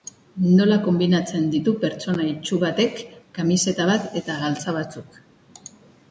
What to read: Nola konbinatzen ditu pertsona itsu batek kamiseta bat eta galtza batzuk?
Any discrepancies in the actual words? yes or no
no